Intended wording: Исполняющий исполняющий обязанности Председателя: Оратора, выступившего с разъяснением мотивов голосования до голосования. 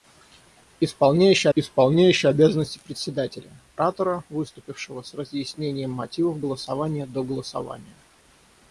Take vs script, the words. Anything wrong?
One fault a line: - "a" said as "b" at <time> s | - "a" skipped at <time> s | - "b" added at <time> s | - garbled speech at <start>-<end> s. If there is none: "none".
none